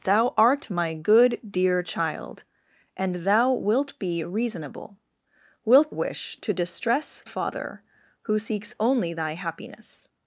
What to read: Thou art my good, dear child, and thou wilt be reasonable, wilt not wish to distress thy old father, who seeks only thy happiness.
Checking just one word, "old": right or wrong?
wrong